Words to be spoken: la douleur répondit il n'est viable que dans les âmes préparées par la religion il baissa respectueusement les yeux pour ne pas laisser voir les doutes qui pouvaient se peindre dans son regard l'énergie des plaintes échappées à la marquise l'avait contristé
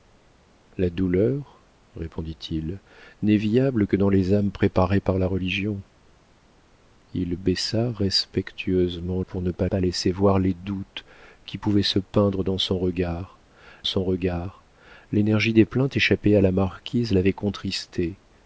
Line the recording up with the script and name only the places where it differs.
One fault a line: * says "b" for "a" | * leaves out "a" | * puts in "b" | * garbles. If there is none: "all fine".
* leaves out "les yeux"
* puts in "pas"
* puts in "son regard"